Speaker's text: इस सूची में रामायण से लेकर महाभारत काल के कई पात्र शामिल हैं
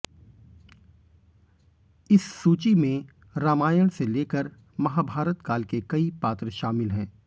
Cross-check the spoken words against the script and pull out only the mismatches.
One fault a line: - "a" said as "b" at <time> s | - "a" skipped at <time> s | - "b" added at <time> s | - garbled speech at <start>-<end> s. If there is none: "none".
none